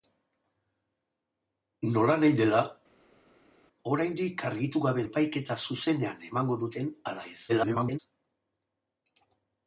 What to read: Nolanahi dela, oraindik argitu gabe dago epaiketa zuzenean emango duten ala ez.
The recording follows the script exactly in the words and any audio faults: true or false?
false